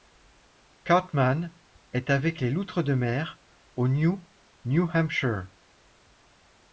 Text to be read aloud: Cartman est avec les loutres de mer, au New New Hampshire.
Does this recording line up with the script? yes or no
yes